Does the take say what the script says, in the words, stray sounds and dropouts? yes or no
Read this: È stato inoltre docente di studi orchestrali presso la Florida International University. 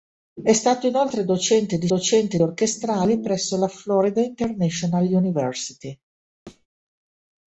no